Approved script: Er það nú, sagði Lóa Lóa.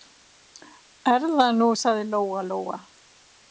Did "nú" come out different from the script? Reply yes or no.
no